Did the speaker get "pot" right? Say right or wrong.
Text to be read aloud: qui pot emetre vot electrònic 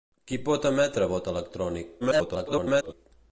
right